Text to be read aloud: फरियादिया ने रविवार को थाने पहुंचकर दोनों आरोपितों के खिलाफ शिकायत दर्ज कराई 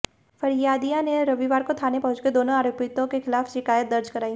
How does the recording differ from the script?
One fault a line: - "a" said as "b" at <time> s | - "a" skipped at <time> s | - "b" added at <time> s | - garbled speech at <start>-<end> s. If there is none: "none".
none